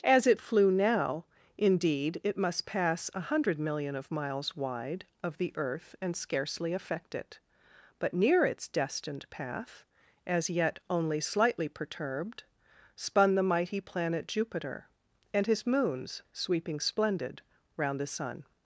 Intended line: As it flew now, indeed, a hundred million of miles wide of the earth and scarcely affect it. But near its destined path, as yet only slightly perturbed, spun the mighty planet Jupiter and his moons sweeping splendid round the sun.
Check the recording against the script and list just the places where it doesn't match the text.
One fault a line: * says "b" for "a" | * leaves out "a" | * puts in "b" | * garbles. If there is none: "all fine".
* puts in "it must pass"